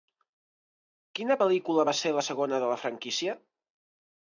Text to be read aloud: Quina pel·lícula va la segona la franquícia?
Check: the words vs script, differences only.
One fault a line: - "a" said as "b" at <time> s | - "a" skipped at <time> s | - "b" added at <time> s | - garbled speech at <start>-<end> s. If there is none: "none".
- "ser" added at 2.0 s
- "de" added at 2.7 s